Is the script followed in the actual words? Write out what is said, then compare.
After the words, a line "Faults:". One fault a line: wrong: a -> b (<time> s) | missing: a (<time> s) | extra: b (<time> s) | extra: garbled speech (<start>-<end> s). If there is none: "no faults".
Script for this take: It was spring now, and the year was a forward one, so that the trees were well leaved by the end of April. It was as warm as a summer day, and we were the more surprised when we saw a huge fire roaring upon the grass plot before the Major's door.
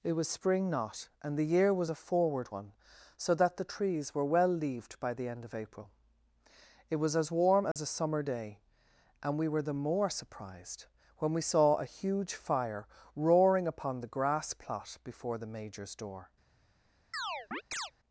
It was spring not, and the year was a forward one, so that the trees were well leaved by the end of April. It was as warm as a summer day, and we were the more surprised when we saw a huge fire roaring upon the grass plot before the Major's door.
Faults:
wrong: now -> not (0.7 s)